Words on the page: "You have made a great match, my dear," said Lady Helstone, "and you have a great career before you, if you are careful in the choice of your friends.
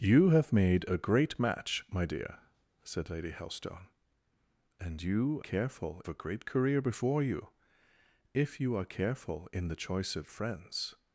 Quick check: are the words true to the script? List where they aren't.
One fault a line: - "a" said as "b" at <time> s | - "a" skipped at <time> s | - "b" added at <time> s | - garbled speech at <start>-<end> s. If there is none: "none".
- "have" said as "careful" at 5.4 s
- "your" skipped at 10.3 s